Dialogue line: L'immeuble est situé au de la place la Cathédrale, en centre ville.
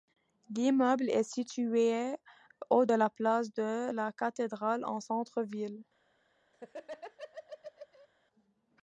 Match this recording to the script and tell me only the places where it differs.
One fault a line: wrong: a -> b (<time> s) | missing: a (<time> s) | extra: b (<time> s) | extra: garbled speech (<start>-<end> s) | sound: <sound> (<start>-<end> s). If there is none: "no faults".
extra: de (3.5 s)
sound: laugh (6.5-8.1 s)